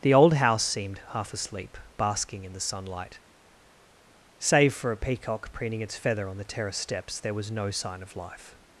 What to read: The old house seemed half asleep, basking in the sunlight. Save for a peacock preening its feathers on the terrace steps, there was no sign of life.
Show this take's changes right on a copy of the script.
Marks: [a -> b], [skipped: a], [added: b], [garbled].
The old house seemed half asleep, basking in the sunlight. Save for a peacock preening its [feathers -> feather] on the terrace steps, there was no sign of life.